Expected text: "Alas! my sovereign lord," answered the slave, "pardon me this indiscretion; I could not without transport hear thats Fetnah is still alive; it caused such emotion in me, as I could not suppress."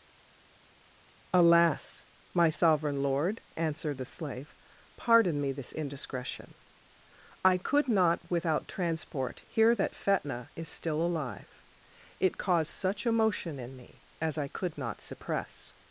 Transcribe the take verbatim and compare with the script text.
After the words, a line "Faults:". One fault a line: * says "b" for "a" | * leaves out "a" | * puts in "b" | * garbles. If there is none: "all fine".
"Alas! my sovereign lord," answered the slave, "pardon me this indiscretion; I could not without transport hear that Fetnah is still alive; it caused such emotion in me, as I could not suppress."
Faults:
* says "that" for "thats"